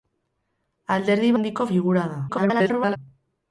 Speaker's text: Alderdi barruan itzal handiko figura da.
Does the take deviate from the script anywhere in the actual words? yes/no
yes